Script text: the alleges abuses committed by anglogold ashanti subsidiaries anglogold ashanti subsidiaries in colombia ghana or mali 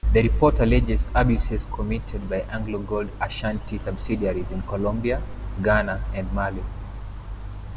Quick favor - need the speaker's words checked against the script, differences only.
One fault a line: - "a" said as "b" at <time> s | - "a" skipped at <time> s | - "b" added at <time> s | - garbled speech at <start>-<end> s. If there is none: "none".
- "report" added at 0.2 s
- "anglogold ashanti subsidiaries" skipped at 4.5 s
- "or" said as "and" at 6.1 s